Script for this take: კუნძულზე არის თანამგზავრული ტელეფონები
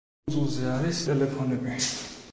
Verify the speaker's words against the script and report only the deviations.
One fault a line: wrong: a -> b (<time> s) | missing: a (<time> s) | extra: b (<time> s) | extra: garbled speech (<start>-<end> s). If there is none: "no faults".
missing: თანამგზავრული (1.0 s)